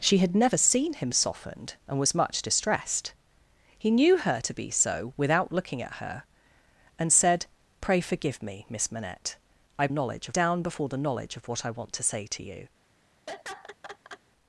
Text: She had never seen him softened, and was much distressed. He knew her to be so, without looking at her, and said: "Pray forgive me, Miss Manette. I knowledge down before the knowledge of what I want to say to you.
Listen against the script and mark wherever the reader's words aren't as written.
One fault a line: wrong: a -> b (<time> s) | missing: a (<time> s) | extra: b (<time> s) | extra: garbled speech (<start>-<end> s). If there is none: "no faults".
no faults